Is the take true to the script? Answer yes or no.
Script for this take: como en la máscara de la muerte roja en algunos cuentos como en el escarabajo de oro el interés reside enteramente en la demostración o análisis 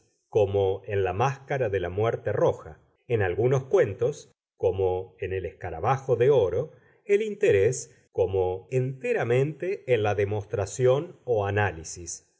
no